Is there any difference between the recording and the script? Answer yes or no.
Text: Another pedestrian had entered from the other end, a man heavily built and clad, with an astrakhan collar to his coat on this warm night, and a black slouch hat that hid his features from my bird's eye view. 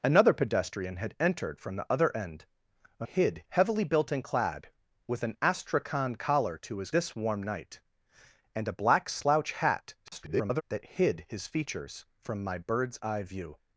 yes